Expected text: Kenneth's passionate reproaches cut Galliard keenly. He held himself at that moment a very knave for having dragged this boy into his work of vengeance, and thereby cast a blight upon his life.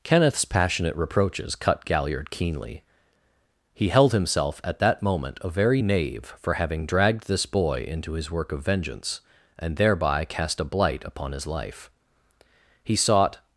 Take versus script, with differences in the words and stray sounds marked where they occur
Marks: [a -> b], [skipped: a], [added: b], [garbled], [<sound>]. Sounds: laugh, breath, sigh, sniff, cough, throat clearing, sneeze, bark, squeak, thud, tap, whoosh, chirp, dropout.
Kenneth's passionate reproaches cut Galliard keenly. He held himself at that moment a very knave for having dragged this boy into his work of vengeance, and thereby cast a blight upon his life. [added: He sought]